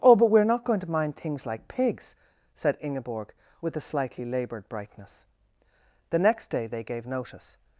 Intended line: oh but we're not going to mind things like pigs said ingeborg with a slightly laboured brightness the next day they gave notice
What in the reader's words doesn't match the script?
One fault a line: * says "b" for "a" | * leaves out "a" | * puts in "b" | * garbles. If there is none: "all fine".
all fine